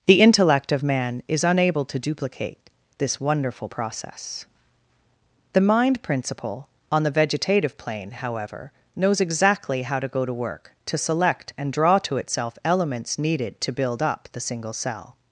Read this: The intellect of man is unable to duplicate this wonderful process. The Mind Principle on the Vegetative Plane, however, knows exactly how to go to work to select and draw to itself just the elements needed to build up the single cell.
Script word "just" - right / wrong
wrong